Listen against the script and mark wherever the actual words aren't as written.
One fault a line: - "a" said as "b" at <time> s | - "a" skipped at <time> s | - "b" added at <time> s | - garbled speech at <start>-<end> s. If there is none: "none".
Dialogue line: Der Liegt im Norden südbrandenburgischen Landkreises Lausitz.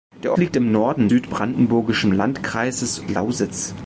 none